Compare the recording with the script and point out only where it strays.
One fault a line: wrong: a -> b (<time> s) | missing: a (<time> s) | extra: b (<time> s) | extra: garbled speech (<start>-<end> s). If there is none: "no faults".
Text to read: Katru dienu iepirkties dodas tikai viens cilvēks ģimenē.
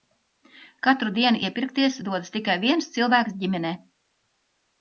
no faults